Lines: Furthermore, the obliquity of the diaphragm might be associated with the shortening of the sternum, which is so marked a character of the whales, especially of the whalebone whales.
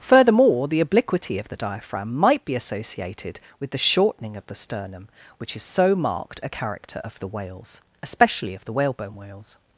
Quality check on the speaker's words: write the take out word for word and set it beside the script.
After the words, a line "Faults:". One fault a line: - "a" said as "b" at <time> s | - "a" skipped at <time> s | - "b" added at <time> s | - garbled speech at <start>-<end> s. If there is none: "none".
Furthermore, the obliquity of the diaphragm might be associated with the shortening of the sternum, which is so marked a character of the whales, especially of the whalebone whales.
Faults:
none